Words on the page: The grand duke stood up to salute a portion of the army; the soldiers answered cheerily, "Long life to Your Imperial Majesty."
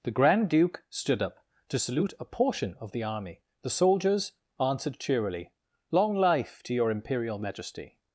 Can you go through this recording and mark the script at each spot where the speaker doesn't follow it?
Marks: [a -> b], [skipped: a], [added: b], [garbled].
The grand duke stood up to salute a portion of the army; the soldiers answered cheerily, "Long life to Your Imperial Majesty."